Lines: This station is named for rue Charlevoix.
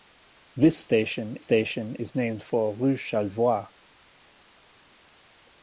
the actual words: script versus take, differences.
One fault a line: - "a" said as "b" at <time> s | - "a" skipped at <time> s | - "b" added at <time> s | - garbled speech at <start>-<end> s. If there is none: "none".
- "station" added at 1.4 s